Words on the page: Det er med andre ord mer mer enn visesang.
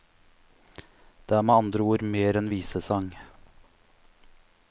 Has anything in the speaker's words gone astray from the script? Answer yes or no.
yes